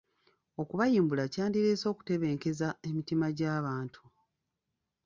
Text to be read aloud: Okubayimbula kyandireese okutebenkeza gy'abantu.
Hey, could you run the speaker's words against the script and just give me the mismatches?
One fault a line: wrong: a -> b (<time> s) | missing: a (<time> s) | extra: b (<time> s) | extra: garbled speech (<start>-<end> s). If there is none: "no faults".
extra: emitima (2.9 s)